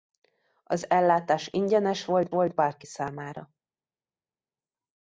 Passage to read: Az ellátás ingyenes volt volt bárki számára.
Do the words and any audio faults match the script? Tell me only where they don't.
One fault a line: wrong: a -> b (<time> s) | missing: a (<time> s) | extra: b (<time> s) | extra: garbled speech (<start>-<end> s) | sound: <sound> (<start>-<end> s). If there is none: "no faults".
no faults